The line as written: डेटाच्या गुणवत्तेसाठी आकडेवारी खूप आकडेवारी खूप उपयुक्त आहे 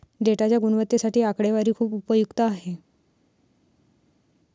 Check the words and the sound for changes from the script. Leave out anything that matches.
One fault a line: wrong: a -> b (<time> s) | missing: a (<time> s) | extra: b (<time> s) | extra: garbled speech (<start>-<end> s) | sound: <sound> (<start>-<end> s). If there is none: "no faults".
missing: आकडेवारी खूप (2.0 s)